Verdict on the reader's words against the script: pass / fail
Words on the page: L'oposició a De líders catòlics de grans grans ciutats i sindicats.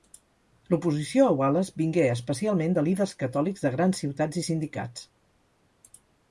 fail